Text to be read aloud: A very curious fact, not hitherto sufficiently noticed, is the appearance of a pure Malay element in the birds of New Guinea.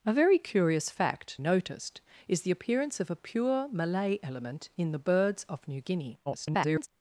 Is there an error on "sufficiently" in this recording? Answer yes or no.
yes